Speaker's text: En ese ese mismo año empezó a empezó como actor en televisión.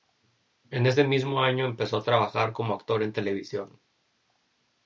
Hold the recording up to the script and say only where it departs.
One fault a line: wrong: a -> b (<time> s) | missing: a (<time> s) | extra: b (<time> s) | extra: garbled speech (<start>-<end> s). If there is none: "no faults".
missing: ese (1.0 s)
wrong: empezó -> trabajar (2.0 s)